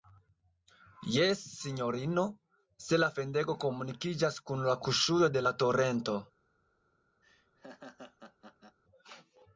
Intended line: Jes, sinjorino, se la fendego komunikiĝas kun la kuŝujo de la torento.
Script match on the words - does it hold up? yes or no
yes